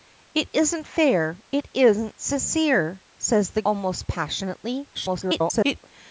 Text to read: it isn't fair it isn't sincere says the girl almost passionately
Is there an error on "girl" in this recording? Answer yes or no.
yes